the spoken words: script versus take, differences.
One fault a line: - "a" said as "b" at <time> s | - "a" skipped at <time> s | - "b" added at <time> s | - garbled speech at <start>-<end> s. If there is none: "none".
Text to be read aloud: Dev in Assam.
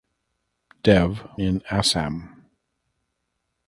none